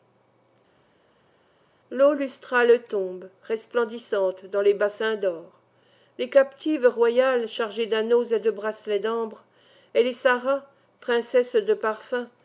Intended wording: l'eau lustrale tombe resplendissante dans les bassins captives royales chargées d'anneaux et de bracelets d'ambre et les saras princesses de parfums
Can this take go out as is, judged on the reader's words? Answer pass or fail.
fail